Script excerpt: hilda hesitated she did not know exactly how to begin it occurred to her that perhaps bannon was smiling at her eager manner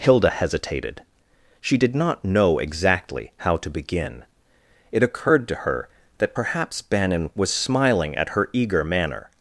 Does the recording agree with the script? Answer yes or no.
yes